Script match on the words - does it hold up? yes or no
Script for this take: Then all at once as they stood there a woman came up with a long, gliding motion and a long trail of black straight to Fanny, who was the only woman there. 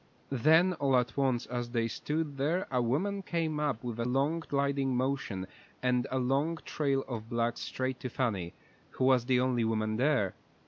yes